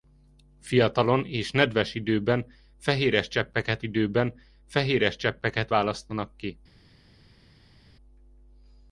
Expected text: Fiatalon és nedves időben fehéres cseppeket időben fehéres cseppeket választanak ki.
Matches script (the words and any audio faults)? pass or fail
pass